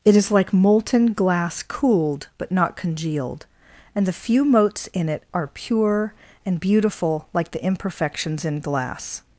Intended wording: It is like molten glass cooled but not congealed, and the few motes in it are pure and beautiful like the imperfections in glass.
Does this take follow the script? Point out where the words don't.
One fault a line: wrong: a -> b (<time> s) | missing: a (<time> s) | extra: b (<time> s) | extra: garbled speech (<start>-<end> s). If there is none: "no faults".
no faults